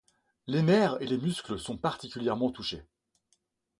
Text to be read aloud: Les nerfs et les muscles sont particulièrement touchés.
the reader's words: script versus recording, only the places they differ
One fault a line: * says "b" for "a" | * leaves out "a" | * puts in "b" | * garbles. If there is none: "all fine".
all fine